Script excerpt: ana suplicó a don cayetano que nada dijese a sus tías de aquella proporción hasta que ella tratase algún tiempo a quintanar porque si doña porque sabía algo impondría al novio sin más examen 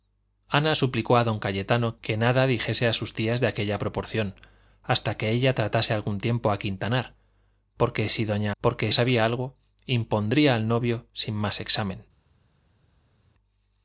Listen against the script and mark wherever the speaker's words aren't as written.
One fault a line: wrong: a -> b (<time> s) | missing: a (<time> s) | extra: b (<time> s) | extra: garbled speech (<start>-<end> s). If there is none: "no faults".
no faults